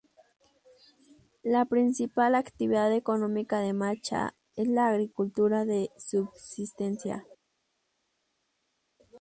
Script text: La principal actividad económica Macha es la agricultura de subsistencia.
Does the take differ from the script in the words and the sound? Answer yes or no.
yes